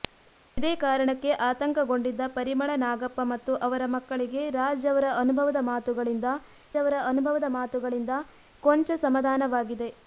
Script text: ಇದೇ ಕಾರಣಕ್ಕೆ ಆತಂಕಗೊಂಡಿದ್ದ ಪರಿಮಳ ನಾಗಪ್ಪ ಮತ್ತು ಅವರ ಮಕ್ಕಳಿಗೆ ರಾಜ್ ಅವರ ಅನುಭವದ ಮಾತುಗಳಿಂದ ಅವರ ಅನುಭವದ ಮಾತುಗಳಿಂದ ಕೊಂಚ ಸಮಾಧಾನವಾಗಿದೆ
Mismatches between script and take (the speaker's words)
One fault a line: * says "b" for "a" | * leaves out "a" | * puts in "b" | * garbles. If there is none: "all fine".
all fine